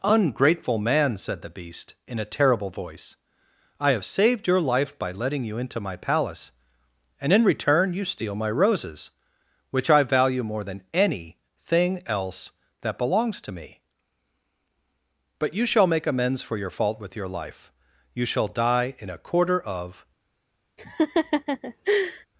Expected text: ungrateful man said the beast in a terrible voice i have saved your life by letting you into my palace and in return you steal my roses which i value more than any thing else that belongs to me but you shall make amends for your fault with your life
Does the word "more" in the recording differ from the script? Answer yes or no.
no